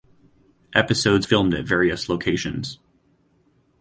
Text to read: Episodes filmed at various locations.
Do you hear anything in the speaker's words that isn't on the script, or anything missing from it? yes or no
no